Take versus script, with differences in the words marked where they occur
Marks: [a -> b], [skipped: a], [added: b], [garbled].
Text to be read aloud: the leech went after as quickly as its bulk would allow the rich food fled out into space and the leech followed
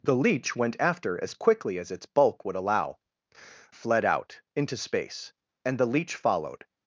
the leech went after as quickly as its bulk would allow [skipped: the rich food] fled out into space and the leech followed